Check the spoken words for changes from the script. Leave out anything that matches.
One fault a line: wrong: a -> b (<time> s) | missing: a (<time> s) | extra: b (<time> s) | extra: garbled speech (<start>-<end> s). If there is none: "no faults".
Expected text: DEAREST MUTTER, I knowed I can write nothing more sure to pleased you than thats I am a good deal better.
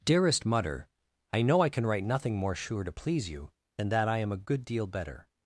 wrong: knowed -> know (1.4 s)
wrong: pleased -> please (2.9 s)
wrong: thats -> that (3.9 s)